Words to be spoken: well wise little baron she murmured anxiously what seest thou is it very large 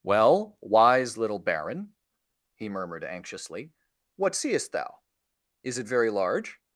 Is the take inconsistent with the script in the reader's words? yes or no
yes